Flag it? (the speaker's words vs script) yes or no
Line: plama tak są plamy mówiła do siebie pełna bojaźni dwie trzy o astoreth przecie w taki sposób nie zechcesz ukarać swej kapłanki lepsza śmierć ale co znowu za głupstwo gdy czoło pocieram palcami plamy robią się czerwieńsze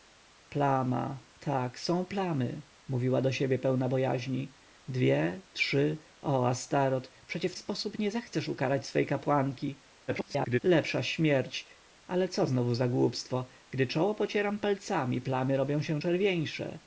yes